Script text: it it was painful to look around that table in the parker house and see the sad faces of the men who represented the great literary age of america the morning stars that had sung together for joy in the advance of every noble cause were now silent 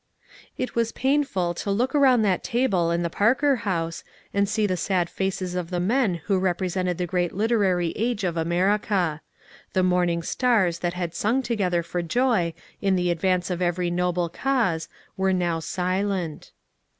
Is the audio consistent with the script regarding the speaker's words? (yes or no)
no